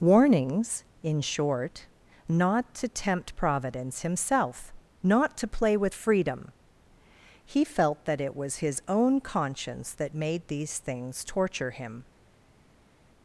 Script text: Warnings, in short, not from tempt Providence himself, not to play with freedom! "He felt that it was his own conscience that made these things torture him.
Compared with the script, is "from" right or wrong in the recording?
wrong